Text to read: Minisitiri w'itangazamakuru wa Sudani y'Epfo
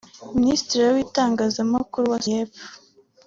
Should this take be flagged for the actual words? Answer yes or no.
yes